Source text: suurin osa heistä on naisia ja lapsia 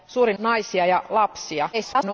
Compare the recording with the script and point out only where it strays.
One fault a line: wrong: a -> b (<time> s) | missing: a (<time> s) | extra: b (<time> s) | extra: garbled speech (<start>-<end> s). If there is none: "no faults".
missing: osa heistä on (0.4 s)
extra: garbled speech (1.7-2.1 s)